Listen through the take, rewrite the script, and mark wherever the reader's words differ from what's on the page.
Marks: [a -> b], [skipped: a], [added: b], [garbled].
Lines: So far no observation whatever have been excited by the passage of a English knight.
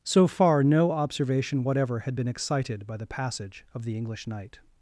So far no observation whatever [have -> had] been excited by the passage of [a -> the] English knight.